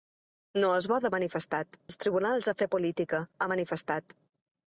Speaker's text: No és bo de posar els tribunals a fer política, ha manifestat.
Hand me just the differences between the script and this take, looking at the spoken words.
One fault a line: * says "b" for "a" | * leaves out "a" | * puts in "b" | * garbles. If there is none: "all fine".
* says "manifestat" for "posar"